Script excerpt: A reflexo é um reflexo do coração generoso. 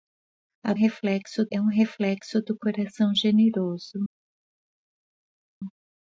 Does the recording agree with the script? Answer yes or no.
yes